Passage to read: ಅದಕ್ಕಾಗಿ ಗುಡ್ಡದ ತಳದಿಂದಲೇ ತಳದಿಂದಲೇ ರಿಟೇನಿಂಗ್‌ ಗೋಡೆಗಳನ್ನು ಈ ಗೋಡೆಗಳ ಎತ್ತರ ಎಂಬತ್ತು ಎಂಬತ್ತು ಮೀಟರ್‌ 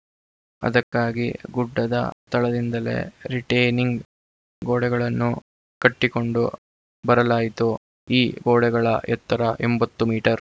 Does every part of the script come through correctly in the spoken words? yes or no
no